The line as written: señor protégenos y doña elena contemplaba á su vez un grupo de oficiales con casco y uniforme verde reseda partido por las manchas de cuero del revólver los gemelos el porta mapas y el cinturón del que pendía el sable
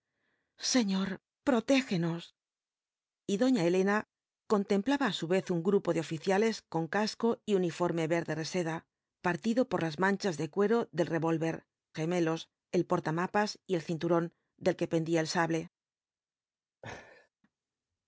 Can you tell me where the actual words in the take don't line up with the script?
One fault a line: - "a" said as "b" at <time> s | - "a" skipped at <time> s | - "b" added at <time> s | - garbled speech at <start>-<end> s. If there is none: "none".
- "los" skipped at 11.6 s